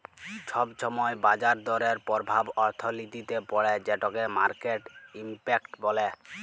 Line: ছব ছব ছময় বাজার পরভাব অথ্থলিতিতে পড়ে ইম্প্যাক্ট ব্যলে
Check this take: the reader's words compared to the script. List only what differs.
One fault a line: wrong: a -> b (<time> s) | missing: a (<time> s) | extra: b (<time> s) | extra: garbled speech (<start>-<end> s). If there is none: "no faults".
missing: ছব (0.7 s)
extra: দরের (1.7 s)
extra: যেটকে মার্কেট (3.9 s)